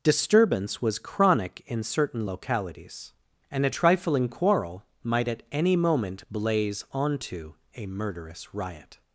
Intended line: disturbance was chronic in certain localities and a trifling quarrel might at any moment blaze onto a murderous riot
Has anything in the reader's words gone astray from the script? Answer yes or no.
no